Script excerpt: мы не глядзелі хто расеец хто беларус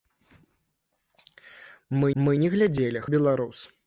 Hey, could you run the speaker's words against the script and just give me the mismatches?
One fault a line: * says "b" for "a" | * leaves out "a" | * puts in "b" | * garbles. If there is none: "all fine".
* puts in "мы"
* leaves out "хто расеец хто"